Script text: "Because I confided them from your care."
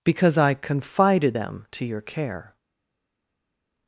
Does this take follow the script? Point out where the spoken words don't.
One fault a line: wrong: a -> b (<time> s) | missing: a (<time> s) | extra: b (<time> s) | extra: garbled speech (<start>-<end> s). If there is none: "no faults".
wrong: from -> to (1.7 s)